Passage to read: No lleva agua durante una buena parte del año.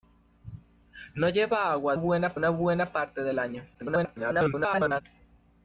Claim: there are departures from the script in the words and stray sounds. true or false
true